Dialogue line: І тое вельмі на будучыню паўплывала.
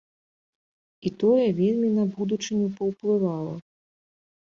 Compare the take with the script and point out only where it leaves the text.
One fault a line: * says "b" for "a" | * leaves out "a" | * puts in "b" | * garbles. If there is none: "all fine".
all fine